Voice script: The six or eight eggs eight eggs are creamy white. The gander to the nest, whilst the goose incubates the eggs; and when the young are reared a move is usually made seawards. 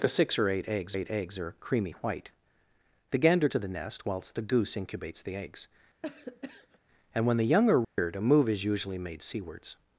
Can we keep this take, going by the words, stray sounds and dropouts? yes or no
no